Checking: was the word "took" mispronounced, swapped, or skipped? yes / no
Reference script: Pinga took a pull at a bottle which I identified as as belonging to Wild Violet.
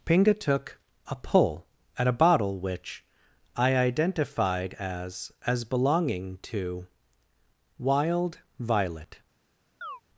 no